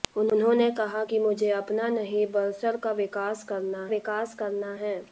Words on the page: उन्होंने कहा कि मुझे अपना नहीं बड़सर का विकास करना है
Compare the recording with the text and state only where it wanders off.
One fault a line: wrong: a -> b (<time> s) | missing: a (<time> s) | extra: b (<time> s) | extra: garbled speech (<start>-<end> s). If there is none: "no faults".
extra: विकास करना (3.9 s)